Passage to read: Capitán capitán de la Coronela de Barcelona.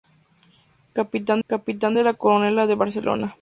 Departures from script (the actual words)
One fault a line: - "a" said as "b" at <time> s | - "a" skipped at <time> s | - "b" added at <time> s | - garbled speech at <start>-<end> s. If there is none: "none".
none